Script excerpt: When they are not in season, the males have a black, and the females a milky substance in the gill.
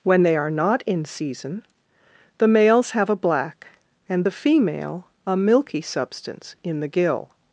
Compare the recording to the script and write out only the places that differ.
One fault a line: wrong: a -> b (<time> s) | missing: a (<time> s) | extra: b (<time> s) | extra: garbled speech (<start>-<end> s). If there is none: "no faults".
wrong: females -> female (4.3 s)